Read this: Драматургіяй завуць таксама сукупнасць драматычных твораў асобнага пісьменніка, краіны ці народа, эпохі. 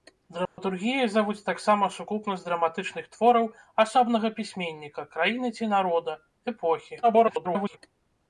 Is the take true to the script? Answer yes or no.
no